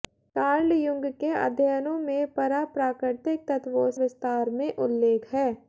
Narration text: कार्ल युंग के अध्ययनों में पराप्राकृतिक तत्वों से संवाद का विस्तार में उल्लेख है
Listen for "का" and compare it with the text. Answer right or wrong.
wrong